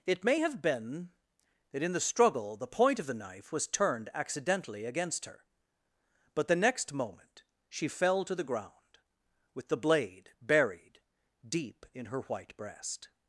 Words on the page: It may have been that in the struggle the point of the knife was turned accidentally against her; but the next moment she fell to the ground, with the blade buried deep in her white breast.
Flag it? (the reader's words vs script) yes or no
no